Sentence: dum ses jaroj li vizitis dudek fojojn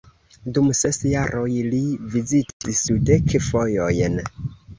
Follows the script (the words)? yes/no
yes